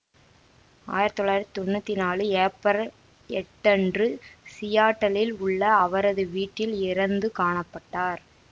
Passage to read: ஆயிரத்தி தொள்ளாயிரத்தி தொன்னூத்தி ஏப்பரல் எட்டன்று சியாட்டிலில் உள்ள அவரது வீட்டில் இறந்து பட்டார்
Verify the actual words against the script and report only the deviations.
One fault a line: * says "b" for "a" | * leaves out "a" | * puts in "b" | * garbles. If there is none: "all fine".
* puts in "நாலு"
* puts in "காண"